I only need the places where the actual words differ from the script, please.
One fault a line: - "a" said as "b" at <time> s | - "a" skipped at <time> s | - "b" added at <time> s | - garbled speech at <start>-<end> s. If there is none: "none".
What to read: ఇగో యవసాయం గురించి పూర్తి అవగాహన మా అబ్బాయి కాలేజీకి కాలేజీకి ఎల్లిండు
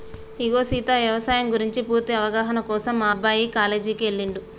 - "సీత" added at 0.6 s
- "కోసం" added at 2.7 s
- "కాలేజీకి" skipped at 4.1 s